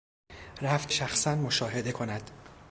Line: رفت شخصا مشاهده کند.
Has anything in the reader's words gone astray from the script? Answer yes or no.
no